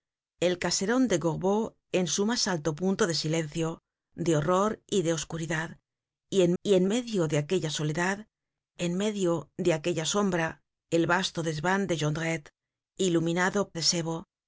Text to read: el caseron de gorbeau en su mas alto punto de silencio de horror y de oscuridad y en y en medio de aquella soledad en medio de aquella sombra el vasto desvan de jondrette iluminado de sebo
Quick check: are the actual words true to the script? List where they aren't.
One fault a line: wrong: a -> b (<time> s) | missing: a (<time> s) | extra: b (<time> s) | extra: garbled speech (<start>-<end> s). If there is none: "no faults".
no faults